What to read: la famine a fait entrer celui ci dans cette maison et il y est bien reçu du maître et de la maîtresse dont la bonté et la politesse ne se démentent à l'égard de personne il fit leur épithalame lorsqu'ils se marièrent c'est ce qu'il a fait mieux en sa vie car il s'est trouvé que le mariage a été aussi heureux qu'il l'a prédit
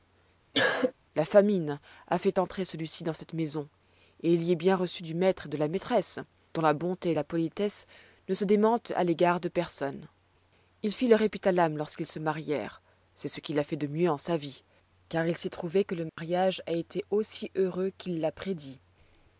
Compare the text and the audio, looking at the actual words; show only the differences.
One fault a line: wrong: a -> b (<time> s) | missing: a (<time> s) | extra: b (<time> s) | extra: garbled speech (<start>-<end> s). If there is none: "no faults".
extra: de (13.8 s)